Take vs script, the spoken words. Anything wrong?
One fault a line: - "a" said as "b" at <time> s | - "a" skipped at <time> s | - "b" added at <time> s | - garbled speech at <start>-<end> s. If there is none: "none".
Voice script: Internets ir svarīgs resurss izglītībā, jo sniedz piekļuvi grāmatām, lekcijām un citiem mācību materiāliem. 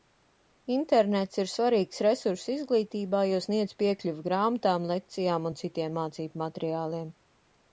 none